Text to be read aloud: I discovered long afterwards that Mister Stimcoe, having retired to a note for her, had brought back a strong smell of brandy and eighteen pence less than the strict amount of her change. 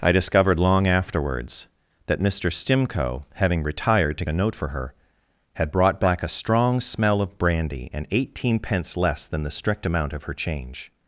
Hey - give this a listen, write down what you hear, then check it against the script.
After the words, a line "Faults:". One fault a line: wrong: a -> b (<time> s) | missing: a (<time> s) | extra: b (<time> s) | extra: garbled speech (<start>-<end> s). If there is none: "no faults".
I discovered long afterwards that Mister Stimcoe, having retired to a note for her, had brought back a strong smell of brandy and eighteen pence less than the strict amount of her change.
Faults:
no faults